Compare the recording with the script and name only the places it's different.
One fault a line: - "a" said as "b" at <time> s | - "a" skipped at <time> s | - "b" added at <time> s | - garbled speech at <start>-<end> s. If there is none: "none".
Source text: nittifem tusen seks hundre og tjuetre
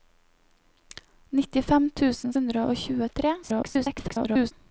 - "seks" skipped at 2.4 s
- garbled speech at 3.4-4.5 s